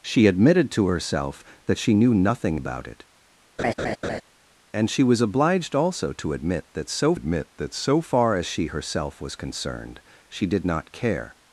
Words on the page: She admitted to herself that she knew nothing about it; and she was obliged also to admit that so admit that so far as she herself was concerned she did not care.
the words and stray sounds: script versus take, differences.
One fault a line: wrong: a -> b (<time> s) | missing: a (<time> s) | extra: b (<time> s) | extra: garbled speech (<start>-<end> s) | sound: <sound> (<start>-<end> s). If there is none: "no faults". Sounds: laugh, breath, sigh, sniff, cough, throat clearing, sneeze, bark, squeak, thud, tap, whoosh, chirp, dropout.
sound: laugh (3.6-4.2 s)